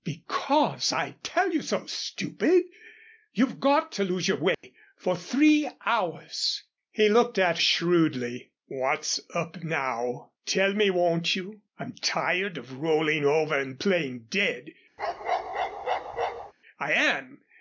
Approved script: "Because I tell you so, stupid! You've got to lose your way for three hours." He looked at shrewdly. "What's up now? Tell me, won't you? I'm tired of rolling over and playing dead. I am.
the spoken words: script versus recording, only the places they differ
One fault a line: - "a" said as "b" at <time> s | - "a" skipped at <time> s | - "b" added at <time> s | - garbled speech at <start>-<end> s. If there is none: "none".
none